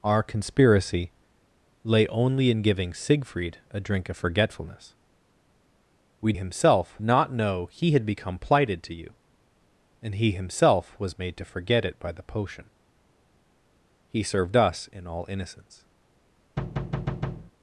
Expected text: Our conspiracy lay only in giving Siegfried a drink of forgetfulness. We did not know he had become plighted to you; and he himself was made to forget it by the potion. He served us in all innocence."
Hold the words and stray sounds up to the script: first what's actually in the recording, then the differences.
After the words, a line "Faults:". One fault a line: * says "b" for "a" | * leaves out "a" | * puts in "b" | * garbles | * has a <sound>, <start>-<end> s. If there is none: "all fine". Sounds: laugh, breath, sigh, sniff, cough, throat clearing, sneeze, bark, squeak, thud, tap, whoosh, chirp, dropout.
Our conspiracy lay only in giving Siegfried a drink of forgetfulness. We himself not know he had become plighted to you; and he himself was made to forget it by the potion. He served us in all innocence."
Faults:
* says "himself" for "did"
* has a thud, 16.6-17.5 s